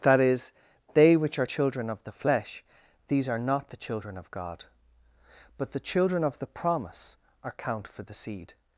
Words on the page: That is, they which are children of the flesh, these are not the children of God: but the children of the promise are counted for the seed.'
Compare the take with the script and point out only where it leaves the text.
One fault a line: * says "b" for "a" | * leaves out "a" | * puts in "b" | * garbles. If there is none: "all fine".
* says "count" for "counted"